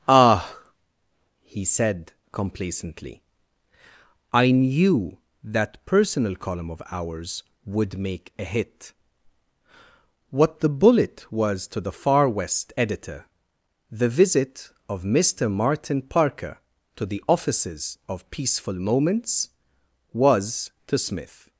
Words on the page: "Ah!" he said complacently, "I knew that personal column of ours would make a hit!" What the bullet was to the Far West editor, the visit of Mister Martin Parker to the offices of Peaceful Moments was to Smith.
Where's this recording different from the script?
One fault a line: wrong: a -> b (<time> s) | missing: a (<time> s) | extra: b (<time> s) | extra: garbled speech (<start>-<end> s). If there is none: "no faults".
no faults